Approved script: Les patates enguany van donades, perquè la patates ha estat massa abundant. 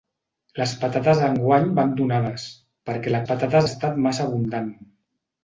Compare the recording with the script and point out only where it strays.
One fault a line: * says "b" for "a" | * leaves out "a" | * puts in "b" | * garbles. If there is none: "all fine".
all fine